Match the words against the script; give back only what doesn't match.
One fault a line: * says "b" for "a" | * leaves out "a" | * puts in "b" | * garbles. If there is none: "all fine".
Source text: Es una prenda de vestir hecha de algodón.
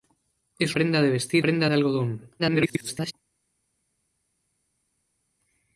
* leaves out "una"
* says "prenda" for "hecha"
* garbles